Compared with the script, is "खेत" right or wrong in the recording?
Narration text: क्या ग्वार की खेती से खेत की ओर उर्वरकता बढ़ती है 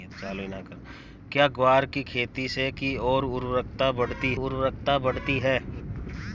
wrong